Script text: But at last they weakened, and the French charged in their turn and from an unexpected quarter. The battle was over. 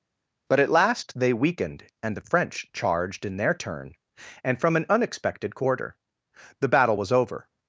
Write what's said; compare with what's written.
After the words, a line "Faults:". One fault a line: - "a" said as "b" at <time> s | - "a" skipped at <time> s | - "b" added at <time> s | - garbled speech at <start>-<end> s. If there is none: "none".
But at last they weakened, and the French charged in their turn and from an unexpected quarter. The battle was over.
Faults:
none